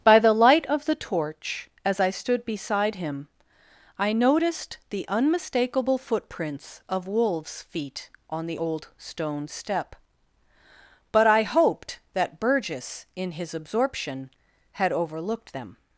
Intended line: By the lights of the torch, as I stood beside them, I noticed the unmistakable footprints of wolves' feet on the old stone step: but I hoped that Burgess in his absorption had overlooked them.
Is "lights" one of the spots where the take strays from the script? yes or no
yes